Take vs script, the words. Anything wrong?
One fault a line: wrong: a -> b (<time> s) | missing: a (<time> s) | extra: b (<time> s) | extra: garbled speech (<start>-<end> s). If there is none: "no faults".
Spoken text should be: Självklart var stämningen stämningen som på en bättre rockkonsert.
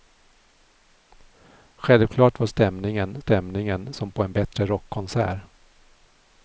no faults